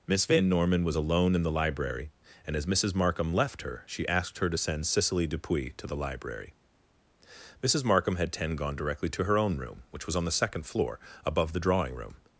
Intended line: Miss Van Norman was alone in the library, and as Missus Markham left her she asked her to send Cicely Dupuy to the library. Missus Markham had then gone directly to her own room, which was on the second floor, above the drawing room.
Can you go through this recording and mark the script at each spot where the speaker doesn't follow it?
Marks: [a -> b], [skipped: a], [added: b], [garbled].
Miss Van Norman was alone in the library, and as Missus Markham left her she asked her to send Cicely Dupuy to the library. Missus Markham had [then -> ten] gone directly to her own room, which was on the second floor, above the drawing room.